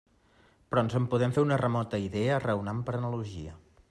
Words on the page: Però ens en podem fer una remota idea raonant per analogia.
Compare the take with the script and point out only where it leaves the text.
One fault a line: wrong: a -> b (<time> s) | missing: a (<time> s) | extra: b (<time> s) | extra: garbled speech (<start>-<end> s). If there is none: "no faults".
no faults